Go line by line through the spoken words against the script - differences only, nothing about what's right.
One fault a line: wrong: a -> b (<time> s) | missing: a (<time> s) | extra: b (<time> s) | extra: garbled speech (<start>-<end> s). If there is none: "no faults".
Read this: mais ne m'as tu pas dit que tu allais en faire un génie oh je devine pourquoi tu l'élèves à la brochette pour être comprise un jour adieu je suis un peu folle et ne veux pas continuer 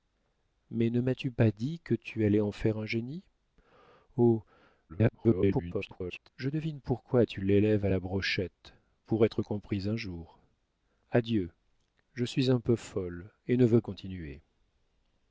extra: garbled speech (4.9-6.3 s)
missing: pas (13.8 s)